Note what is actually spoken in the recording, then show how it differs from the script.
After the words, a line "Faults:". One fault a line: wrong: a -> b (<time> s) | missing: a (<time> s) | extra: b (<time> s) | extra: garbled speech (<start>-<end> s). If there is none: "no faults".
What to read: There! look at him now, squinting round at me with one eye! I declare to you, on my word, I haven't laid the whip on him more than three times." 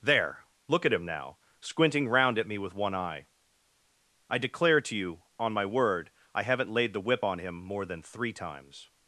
There! look at him now, squinting round at me with one eye! I declare to you, on my word, I haven't laid the whip on him more than three times."
Faults:
no faults